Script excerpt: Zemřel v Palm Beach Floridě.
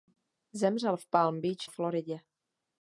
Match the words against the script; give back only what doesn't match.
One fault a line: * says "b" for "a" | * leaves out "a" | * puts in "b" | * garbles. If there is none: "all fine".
all fine